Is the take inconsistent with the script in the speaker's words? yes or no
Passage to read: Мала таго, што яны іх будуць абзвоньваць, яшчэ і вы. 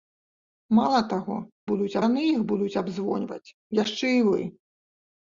yes